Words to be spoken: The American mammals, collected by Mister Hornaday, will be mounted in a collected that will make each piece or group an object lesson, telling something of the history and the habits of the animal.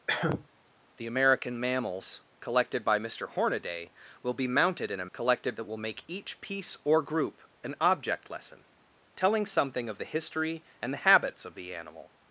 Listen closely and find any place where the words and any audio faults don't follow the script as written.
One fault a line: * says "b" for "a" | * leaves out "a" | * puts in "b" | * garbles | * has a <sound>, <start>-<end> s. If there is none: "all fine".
* has a cough, 0.1-0.5 s